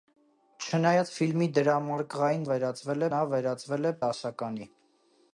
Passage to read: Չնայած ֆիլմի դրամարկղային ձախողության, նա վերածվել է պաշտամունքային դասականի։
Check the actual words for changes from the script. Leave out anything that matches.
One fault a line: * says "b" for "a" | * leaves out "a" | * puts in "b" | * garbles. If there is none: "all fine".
* says "վերածվել" for "ձախողության"
* leaves out "պաշտամունքային"